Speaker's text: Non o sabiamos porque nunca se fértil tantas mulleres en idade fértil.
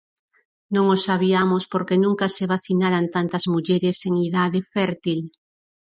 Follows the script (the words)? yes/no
no